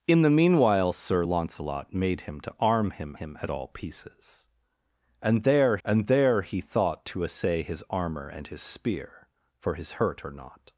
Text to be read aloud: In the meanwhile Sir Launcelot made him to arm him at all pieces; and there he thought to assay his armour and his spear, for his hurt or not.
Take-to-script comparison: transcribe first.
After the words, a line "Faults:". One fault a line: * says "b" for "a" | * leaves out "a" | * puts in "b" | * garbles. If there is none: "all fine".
In the meanwhile Sir Launcelot made him to arm him him at all pieces; and there and there he thought to assay his armour and his spear, for his hurt or not.
Faults:
* puts in "him"
* puts in "and there"